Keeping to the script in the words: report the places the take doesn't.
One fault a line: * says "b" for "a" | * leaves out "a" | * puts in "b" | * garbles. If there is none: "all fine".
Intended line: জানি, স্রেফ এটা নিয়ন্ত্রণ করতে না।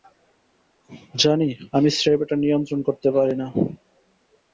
* puts in "আমি"
* puts in "পারি"